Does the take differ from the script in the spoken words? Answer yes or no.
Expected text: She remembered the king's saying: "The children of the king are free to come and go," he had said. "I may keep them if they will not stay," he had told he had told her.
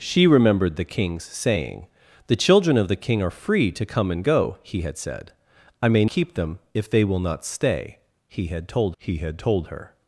no